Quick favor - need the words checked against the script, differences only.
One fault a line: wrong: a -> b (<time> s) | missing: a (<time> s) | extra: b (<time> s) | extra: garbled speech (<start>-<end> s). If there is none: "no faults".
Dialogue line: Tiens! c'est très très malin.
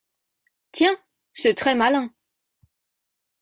missing: très (1.7 s)